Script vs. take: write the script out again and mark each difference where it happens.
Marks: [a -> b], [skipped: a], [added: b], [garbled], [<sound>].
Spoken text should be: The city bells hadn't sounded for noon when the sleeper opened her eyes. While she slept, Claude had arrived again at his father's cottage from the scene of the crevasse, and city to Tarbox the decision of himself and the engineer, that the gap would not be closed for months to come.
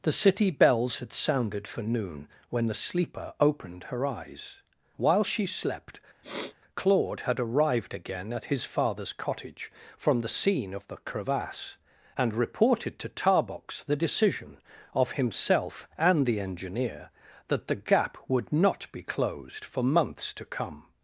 The city bells [hadn't -> had] sounded for noon when the sleeper opened her eyes. While she slept, [sniff] Claude had arrived again at his father's cottage from the scene of the crevasse, and [city -> reported] to Tarbox the decision of himself and the engineer, that the gap would not be closed for months to come.